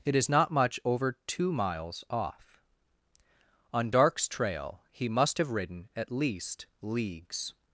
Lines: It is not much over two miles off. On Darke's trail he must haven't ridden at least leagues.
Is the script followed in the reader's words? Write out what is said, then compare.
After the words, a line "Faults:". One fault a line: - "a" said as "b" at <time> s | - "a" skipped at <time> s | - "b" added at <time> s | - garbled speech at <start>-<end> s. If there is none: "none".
It is not much over two miles off. On Darke's trail he must have ridden at least leagues.
Faults:
- "haven't" said as "have" at 5.4 s